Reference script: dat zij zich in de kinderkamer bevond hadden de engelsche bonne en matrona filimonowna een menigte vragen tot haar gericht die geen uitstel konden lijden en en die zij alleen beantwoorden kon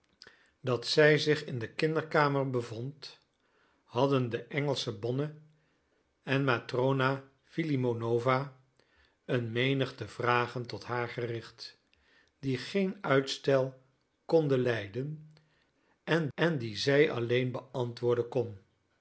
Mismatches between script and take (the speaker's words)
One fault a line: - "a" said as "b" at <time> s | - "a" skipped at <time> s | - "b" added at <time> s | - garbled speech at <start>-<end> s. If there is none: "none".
none